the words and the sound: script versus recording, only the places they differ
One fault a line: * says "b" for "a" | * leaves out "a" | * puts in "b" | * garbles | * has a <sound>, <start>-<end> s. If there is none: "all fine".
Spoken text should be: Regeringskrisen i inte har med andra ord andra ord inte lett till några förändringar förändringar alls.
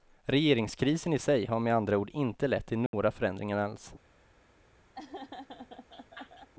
* says "sig" for "inte"
* leaves out "andra ord"
* has a dropout, 2.9-2.9 s
* leaves out "förändringar"
* has a laugh, 4.9-6.5 s